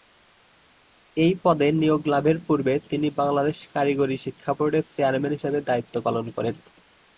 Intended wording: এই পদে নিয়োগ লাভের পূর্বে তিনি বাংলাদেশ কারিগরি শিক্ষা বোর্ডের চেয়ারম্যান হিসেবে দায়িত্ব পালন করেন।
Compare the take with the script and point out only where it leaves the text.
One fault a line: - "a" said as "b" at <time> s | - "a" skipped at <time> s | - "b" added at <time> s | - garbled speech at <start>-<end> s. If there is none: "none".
none